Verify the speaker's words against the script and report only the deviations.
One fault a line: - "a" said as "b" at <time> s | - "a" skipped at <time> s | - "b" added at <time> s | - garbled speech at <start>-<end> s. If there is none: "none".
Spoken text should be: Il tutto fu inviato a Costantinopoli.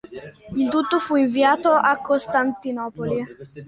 none